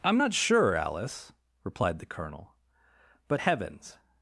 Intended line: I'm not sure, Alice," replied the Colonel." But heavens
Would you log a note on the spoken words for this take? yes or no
no